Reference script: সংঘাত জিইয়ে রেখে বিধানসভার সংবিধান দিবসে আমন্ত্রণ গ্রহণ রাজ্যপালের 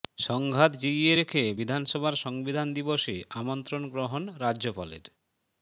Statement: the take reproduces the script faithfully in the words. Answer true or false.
true